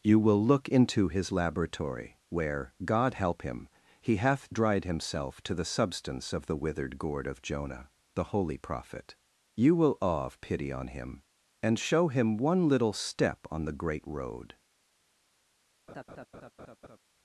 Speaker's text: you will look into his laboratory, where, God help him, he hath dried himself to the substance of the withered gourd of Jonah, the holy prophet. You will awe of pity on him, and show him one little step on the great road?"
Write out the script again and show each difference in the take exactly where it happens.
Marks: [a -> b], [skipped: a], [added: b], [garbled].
you will look into his laboratory, where, God help him, he hath dried himself to the substance of the withered gourd of Jonah, the holy prophet. You will awe of pity on him, and show him one little step on the great road?"